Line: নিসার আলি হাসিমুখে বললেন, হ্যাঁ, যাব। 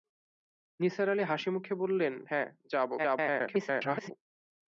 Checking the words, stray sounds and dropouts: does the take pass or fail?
fail